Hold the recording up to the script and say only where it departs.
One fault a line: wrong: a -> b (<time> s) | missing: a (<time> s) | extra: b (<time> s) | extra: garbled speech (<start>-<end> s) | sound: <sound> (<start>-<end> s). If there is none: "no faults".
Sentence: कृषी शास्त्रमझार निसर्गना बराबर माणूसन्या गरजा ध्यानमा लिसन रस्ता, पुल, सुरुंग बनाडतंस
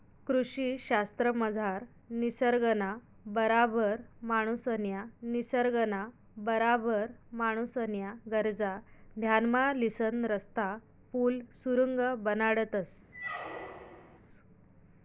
extra: निसर्गना बराबर माणूसन्या (5.2 s)
sound: squeak (13.1-14.2 s)